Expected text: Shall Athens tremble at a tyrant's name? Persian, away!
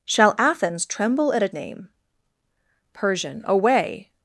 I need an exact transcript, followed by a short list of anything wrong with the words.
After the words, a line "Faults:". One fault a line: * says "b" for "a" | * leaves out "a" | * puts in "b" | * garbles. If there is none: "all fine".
Shall Athens tremble at a name? Persian, away!
Faults:
* leaves out "tyrant's"